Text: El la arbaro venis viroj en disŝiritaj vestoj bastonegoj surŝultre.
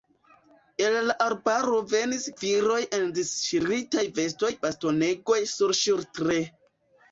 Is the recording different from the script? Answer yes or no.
no